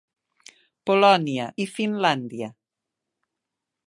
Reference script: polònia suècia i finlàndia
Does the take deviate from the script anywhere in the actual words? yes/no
yes